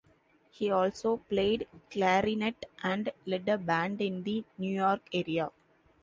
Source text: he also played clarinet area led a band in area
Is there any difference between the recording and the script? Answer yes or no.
yes